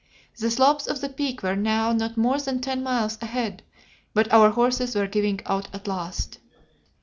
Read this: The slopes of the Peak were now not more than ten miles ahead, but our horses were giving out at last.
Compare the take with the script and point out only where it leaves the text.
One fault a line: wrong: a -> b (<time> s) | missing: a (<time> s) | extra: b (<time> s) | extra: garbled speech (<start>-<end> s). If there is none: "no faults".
no faults